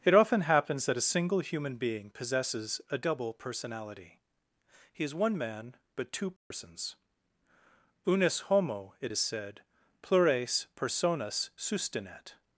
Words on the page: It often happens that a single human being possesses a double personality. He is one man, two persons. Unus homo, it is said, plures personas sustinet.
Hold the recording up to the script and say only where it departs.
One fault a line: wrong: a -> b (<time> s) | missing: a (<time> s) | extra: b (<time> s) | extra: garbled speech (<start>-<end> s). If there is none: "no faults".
extra: but (6.0 s)